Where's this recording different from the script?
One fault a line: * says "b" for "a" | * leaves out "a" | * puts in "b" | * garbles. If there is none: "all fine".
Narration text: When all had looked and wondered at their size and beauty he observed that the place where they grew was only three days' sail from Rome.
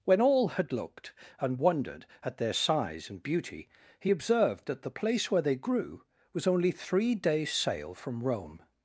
all fine